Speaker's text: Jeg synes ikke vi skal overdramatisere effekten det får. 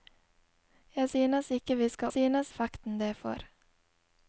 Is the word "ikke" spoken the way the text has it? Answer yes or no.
yes